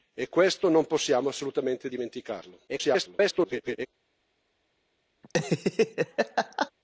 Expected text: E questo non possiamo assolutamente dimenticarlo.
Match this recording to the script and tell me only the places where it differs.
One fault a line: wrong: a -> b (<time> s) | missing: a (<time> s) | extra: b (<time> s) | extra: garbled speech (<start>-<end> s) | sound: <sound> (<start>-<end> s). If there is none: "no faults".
extra: garbled speech (2.7-3.9 s)
sound: laugh (5.2-6.7 s)